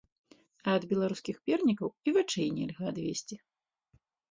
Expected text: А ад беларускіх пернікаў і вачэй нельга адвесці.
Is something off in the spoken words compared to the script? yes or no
no